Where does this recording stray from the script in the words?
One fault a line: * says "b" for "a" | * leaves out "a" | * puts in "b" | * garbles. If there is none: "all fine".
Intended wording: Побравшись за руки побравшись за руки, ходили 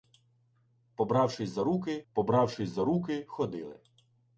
all fine